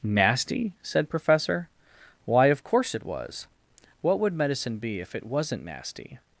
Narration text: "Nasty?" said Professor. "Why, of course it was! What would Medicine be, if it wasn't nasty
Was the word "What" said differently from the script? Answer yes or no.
no